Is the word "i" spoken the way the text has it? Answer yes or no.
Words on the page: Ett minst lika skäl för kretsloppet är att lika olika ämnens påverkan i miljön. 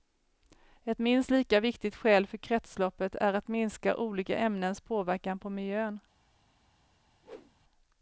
no